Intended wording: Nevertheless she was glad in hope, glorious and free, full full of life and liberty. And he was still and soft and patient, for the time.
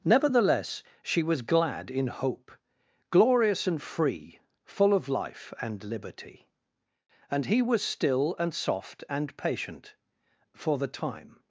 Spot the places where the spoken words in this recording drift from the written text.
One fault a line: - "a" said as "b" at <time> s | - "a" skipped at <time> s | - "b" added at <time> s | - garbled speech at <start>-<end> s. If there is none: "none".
- "full" skipped at 4.9 s